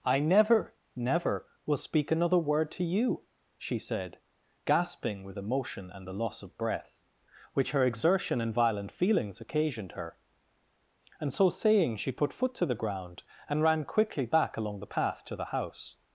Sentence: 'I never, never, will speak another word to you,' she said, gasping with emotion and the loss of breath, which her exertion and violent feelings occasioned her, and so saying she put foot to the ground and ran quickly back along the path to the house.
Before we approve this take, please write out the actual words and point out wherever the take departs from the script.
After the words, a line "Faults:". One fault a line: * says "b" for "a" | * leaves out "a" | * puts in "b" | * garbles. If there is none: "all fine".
'I never, never, will speak another word to you,' she said, gasping with emotion and the loss of breath, which her exertion and violent feelings occasioned her, and so saying she put foot to the ground and ran quickly back along the path to the house.
Faults:
all fine